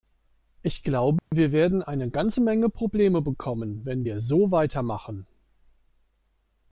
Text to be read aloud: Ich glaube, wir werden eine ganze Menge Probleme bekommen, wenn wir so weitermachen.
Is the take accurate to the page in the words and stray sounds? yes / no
no